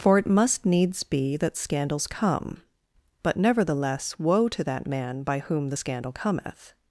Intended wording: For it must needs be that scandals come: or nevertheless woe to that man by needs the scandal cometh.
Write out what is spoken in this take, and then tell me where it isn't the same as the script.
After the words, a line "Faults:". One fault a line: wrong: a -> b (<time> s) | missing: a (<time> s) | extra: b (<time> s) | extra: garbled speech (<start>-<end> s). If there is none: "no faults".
For it must needs be that scandals come: but nevertheless woe to that man by whom the scandal cometh.
Faults:
wrong: or -> but (3.2 s)
wrong: needs -> whom (5.4 s)